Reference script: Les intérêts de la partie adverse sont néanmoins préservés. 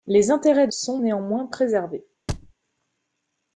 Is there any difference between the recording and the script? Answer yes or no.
yes